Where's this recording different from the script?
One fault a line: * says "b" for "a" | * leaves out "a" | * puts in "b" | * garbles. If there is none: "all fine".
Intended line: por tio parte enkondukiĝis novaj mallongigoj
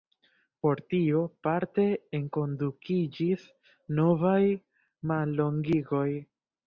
all fine